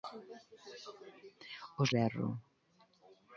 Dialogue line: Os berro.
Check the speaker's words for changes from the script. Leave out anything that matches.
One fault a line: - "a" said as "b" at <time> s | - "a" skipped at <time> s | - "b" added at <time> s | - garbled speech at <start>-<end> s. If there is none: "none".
none